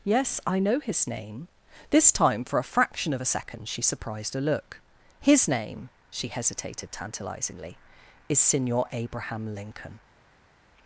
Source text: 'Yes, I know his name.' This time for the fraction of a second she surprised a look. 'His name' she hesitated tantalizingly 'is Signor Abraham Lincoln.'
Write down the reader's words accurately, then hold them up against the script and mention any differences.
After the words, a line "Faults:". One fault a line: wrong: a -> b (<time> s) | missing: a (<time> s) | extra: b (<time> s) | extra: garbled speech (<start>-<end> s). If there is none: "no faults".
'Yes, I know his name.' This time for a fraction of a second she surprised a look. 'His name' she hesitated tantalizingly 'is Signor Abraham Lincoln.'
Faults:
wrong: the -> a (2.6 s)